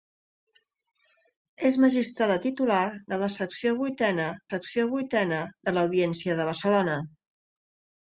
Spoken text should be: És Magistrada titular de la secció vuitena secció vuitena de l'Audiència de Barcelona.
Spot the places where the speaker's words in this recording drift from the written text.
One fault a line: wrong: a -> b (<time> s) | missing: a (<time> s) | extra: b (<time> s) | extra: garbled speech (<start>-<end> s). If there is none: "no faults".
no faults